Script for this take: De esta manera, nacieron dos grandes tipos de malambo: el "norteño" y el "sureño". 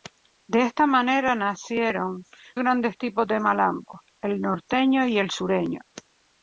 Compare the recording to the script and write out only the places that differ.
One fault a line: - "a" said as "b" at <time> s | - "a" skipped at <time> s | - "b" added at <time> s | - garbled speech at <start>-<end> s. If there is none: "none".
- "dos" skipped at 2.2 s